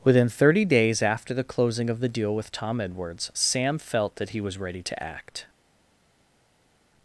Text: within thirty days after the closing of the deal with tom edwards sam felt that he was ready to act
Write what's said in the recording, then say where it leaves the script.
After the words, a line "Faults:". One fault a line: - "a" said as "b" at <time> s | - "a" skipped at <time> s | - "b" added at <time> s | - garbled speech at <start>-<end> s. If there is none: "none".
within thirty days after the closing of the deal with tom edwards sam felt that he was ready to act
Faults:
none